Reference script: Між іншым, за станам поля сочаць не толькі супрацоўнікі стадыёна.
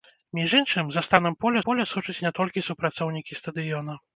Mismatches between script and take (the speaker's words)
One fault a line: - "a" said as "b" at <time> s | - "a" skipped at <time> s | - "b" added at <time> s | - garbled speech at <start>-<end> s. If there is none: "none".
- "поля" added at 1.7 s